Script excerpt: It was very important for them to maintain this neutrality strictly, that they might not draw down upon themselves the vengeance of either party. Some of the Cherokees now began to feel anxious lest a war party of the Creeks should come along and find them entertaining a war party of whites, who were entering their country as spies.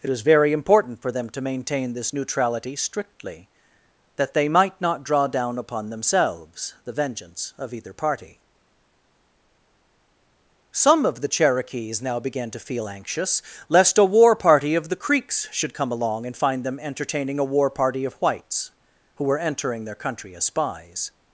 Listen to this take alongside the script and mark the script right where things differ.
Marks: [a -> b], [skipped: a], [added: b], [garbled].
It was very important for them to maintain this neutrality strictly, that they might not draw down upon themselves the vengeance of either party. Some of the Cherokees now began to feel anxious lest a war party of the Creeks should come along and find them entertaining a war party of whites, who were entering their country as spies.